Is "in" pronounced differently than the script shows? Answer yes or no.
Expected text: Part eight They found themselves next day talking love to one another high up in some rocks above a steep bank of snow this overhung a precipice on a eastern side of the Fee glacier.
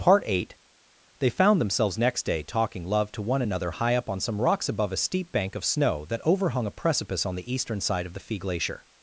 yes